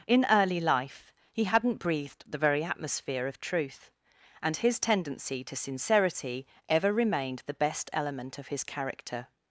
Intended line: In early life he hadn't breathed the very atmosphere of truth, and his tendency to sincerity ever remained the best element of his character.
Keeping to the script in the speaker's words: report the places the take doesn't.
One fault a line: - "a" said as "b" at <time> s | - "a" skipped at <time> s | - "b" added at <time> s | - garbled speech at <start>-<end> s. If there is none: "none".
none